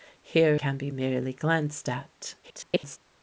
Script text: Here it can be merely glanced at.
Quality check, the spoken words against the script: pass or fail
fail